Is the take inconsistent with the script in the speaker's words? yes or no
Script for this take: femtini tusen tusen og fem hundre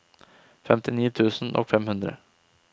yes